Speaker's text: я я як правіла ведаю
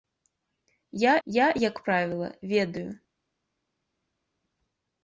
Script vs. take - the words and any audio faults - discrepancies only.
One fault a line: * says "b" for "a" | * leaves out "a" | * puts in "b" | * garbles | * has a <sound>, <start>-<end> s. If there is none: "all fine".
all fine